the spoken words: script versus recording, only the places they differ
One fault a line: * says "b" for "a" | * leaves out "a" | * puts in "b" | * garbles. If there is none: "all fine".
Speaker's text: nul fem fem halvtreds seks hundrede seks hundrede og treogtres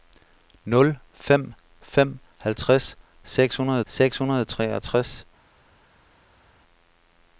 all fine